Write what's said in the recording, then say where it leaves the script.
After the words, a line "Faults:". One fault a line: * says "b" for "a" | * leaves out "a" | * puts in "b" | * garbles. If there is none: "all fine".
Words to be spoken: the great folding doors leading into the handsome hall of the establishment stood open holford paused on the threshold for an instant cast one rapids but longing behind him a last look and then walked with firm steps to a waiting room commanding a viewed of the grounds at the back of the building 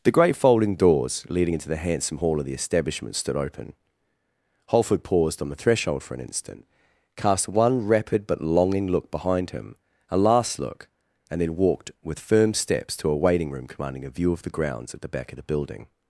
the great folding doors leading into the handsome hall of the establishment stood open holford paused on the threshold for an instant cast one rapid but longing look behind him a last look and then walked with firm steps to a waiting room commanding a view of the grounds at the back of the building
Faults:
* says "rapid" for "rapids"
* puts in "look"
* says "view" for "viewed"